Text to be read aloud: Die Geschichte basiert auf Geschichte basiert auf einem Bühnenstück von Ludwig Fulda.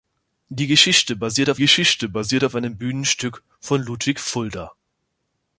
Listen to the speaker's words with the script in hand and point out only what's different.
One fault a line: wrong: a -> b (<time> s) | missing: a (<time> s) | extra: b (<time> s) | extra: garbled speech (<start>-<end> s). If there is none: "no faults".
no faults